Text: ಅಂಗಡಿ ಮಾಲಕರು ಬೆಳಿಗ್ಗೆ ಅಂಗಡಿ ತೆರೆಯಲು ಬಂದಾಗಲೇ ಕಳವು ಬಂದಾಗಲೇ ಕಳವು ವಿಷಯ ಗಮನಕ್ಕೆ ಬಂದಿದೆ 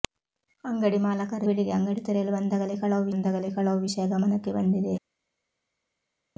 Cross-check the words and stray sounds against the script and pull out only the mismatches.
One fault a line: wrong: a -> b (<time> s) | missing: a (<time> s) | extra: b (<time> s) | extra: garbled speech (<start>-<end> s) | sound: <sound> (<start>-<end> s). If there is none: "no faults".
no faults